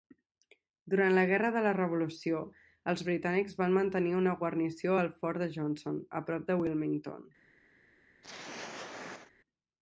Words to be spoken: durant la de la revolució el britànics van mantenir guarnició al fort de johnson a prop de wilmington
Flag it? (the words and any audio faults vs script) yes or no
yes